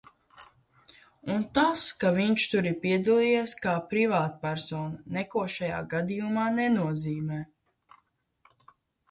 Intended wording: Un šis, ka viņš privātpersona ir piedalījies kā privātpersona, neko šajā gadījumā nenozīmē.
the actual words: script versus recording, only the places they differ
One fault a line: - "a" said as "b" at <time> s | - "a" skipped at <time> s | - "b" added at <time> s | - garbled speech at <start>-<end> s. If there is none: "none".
- "šis" said as "tas" at 1.6 s
- "privātpersona" said as "tur" at 2.5 s